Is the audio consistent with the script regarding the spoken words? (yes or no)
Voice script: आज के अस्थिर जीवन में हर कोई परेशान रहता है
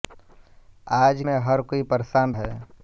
no